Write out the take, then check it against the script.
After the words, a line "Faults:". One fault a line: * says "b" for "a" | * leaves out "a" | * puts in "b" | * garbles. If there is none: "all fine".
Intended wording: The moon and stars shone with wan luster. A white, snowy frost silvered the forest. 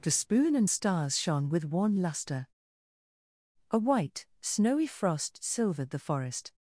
The spoon and stars shone with wan luster. A white, snowy frost silvered the forest.
Faults:
* says "spoon" for "moon"